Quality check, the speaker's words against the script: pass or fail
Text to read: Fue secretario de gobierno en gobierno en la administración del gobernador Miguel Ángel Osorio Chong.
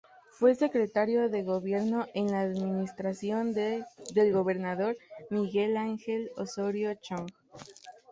fail